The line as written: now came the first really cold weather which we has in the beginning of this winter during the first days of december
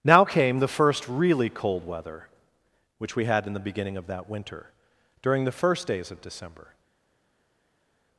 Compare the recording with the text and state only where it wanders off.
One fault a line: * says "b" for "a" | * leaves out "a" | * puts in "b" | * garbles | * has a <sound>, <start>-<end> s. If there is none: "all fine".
* says "had" for "has"
* says "that" for "this"